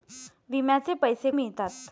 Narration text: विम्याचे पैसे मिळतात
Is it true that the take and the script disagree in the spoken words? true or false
false